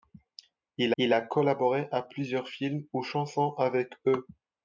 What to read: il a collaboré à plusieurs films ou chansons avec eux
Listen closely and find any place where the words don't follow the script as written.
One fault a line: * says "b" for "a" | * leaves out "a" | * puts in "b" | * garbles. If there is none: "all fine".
* puts in "il"